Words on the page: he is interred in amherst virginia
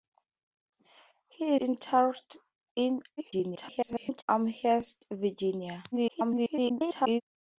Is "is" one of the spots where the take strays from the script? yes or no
yes